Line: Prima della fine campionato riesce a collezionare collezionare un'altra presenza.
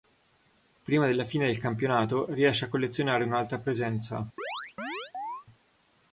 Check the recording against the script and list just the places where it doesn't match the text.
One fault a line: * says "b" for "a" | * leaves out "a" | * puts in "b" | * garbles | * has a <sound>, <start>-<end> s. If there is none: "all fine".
* puts in "del"
* leaves out "collezionare"
* has a chirp, 4.4-5.5 s